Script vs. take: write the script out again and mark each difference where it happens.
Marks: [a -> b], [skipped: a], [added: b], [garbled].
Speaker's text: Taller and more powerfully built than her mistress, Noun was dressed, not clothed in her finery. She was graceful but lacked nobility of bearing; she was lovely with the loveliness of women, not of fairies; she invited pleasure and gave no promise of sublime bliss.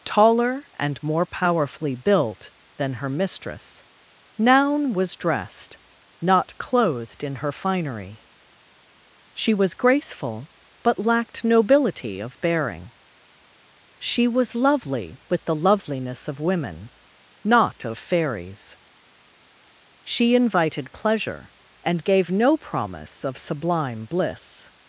Taller and more powerfully built than her mistress, Noun was dressed, not clothed in her finery. She was graceful but lacked nobility of bearing; she was lovely with the loveliness of women, not of fairies; she invited pleasure and gave no promise of sublime bliss.